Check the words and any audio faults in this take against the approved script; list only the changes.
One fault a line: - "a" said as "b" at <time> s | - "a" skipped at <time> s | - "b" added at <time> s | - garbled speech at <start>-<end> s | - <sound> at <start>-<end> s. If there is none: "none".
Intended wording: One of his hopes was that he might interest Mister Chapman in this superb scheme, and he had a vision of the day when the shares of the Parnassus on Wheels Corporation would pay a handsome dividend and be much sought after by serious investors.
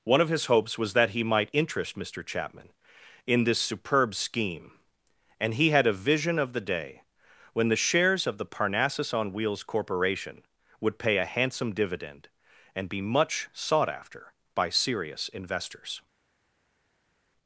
none